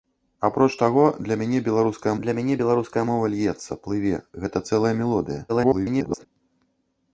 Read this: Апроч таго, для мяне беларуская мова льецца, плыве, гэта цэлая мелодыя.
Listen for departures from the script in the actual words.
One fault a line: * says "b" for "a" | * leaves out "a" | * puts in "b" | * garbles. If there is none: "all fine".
* puts in "для мяне беларуская"
* garbles